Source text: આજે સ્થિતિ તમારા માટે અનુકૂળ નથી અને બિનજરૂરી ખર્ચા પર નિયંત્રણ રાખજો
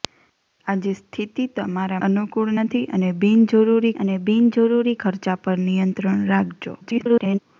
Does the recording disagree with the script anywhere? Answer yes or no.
yes